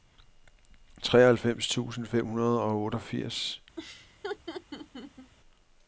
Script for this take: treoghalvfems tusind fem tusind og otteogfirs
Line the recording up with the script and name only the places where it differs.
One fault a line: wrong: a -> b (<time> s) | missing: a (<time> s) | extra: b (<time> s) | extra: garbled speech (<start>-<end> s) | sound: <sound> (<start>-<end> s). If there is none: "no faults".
wrong: tusind -> hundrede (2.3 s)
sound: laugh (3.8-5.3 s)